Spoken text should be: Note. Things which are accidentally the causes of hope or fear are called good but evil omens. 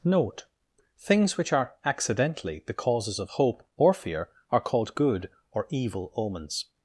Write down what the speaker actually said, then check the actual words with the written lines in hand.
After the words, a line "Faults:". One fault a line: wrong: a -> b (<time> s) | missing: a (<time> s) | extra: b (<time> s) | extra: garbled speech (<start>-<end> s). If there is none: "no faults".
Note. Things which are accidentally the causes of hope or fear are called good or evil omens.
Faults:
wrong: but -> or (5.5 s)